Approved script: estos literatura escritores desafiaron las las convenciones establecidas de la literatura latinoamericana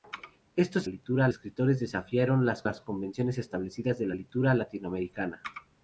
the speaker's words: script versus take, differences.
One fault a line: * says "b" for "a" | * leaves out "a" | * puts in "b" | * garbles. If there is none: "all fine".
all fine